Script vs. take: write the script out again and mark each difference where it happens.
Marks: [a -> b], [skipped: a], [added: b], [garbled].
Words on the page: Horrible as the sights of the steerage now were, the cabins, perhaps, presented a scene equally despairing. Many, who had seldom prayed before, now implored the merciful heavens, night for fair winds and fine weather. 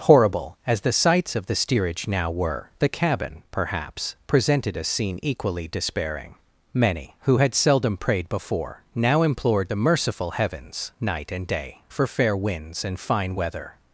Horrible as the sights of the steerage now were, the [cabins, -> cabin] perhaps, presented a scene equally despairing. Many, who had seldom prayed before, now implored the merciful heavens, night [added: and day] for fair winds and fine weather.